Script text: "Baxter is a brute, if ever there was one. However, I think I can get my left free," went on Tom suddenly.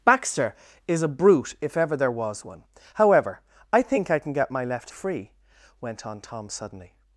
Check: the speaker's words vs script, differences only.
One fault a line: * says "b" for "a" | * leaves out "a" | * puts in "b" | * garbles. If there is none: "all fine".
all fine